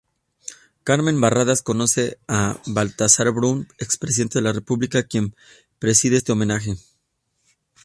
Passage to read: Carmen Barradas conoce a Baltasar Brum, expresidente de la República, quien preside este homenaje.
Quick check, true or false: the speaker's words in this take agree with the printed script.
true